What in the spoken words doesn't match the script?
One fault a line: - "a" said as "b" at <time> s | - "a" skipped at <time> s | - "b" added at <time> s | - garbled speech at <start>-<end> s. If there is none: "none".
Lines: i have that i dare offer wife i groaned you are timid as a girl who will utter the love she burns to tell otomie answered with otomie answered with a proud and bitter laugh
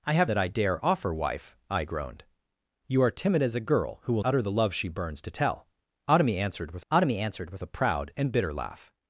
none